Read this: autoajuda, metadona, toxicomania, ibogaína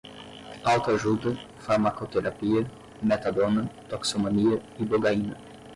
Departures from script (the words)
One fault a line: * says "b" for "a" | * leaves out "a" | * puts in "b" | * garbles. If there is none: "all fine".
* puts in "farmacoterapia"